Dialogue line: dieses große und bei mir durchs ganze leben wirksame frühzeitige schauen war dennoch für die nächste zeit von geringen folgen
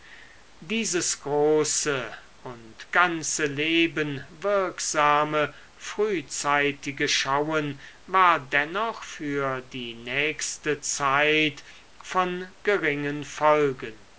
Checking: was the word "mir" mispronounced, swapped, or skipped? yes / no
yes